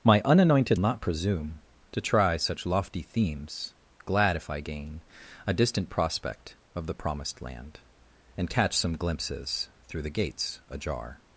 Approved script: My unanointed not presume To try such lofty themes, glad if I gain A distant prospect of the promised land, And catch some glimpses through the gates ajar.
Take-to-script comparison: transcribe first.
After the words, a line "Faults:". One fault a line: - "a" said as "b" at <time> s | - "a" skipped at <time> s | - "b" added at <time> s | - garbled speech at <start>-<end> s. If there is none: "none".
My unanointed not presume To try such lofty themes, glad if I gain A distant prospect of the promised land, And catch some glimpses through the gates ajar.
Faults:
none